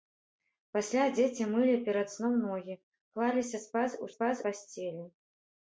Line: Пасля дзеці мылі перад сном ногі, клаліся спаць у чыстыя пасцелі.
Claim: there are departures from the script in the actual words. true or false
true